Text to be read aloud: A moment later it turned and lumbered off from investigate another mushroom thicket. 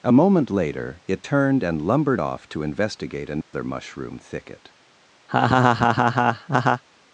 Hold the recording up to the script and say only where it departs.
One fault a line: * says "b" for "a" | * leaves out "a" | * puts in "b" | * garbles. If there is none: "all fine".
* says "to" for "from"